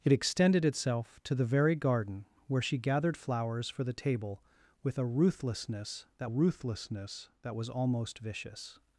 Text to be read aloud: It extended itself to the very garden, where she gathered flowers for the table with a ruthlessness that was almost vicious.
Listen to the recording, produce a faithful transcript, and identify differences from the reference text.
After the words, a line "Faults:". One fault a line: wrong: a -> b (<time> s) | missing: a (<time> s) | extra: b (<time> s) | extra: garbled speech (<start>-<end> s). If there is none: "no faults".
It extended itself to the very garden, where she gathered flowers for the table with a ruthlessness that ruthlessness that was almost vicious.
Faults:
extra: ruthlessness that (6.2 s)